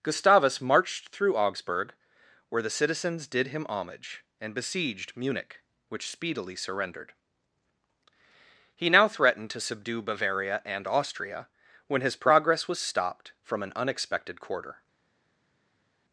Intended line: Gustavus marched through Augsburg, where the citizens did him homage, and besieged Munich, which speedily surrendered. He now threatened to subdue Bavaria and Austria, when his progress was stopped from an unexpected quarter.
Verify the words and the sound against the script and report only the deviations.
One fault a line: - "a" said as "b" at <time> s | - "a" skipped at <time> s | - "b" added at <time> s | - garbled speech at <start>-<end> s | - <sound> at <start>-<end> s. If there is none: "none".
none